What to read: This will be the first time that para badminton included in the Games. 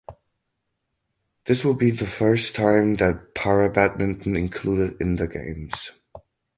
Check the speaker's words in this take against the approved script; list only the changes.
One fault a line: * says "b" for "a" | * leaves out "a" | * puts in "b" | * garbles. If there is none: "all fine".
all fine